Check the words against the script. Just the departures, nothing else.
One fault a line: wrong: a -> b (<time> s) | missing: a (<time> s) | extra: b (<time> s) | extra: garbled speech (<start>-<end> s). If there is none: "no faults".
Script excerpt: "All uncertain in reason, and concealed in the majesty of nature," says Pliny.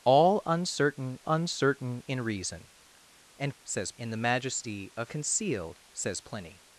extra: uncertain (1.3 s)
wrong: concealed -> says (3.6 s)
wrong: nature -> concealed (5.1 s)